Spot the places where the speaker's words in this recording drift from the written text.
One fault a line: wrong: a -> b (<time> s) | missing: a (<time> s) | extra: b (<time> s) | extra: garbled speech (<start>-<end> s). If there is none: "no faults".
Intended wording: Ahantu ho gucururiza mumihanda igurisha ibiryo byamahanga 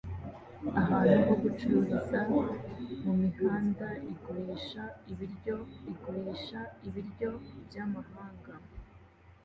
extra: igurisha ibiryo (5.9 s)